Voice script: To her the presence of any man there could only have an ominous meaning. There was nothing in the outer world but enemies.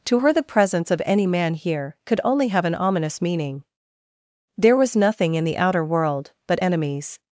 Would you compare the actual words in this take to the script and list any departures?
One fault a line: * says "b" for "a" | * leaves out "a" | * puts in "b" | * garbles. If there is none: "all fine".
* says "here" for "there"